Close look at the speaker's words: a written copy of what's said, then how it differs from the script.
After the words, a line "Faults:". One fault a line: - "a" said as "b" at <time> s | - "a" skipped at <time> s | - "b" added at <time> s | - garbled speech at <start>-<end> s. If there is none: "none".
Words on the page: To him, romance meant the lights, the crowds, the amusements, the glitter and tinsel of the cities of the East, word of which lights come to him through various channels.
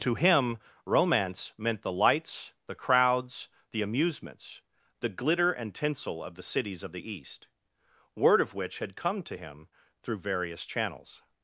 To him, romance meant the lights, the crowds, the amusements, the glitter and tinsel of the cities of the East, word of which had come to him through various channels.
Faults:
- "lights" said as "had" at 8.8 s